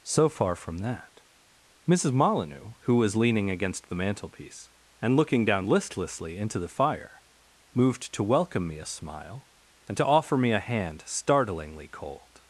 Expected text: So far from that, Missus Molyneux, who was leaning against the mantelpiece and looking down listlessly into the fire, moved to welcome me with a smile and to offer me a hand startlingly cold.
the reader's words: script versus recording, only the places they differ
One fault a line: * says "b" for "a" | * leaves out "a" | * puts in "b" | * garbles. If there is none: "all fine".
* leaves out "with"